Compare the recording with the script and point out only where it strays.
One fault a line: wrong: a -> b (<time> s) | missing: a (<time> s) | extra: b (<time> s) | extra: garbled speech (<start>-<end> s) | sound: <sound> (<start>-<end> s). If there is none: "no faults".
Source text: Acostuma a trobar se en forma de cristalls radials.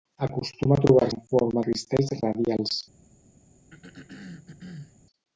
missing: se (1.1 s)
missing: de (1.6 s)
sound: throat clearing (3.7-5.0 s)